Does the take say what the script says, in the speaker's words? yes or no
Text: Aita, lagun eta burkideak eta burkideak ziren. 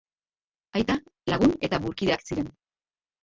no